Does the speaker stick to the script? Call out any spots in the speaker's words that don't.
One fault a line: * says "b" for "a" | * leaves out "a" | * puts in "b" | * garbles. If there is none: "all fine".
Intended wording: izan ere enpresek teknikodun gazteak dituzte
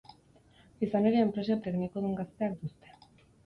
all fine